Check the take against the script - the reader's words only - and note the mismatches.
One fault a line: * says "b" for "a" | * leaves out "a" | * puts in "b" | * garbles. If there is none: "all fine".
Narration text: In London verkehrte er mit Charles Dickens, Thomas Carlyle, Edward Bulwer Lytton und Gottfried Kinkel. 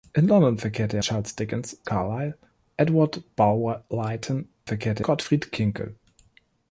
* leaves out "mit"
* leaves out "Thomas"
* says "verkehrte" for "und"